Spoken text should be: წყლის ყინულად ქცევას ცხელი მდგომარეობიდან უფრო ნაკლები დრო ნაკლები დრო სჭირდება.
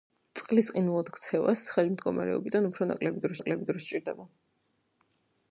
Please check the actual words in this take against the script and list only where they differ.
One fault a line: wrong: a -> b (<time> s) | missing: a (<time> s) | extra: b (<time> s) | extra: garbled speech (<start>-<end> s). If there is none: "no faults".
no faults